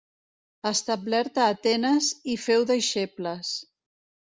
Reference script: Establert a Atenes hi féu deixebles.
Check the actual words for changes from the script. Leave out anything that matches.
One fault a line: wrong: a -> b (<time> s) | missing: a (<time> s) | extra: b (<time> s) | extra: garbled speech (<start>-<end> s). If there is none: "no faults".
no faults